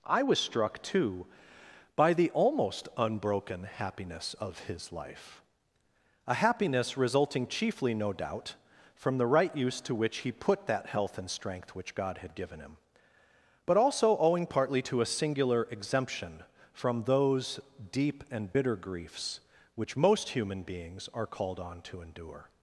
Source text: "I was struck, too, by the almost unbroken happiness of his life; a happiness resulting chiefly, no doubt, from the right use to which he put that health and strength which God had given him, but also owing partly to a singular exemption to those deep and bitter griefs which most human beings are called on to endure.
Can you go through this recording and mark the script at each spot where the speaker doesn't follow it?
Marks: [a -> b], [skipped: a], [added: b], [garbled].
"I was struck, too, by the almost unbroken happiness of his life; a happiness resulting chiefly, no doubt, from the right use to which he put that health and strength which God had given him, but also owing partly to a singular exemption [to -> from] those deep and bitter griefs which most human beings are called on to endure.